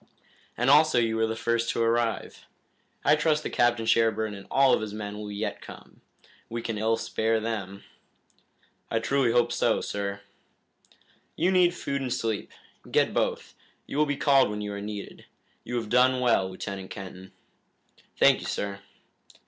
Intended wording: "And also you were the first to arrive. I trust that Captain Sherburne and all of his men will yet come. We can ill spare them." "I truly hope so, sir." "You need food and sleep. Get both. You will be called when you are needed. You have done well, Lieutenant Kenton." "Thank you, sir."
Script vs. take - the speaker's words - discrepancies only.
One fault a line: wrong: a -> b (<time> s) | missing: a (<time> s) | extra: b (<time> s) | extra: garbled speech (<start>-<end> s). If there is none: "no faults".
no faults